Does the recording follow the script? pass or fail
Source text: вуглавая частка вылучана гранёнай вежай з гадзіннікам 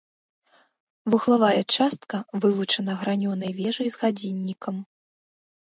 pass